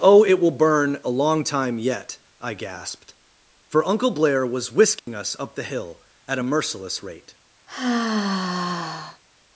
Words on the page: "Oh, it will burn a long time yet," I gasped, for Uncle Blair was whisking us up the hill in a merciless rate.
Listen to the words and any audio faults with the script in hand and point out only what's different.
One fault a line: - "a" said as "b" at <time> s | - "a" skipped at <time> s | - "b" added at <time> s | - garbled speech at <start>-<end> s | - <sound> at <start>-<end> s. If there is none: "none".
- dropout at 5.0-5.1 s
- "in" said as "at" at 6.2 s
- sigh at 7.7-9.2 s